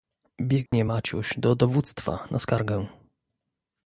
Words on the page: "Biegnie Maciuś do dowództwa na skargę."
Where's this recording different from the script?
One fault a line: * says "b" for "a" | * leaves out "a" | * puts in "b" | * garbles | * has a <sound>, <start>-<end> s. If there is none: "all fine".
* has a dropout, 0.7-0.7 s